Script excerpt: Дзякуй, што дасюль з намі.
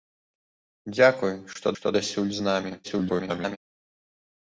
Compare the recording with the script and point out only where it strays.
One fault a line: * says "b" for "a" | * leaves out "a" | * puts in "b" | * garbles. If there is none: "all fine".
* puts in "што"
* garbles